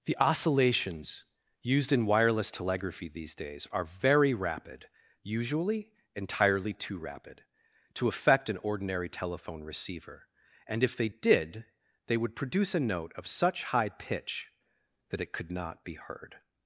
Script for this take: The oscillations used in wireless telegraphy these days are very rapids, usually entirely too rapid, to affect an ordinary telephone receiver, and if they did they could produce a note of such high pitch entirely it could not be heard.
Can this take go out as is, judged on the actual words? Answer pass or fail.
fail